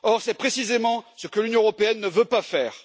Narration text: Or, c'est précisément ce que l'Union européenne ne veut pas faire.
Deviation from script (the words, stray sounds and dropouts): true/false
false